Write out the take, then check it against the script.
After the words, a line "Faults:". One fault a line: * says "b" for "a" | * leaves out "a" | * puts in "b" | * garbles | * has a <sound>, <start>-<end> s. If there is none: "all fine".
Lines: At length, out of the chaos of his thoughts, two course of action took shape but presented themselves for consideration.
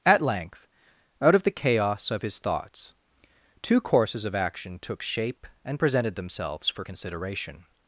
At length, out of the chaos of his thoughts, two courses of action took shape and presented themselves for consideration.
Faults:
* says "courses" for "course"
* says "and" for "but"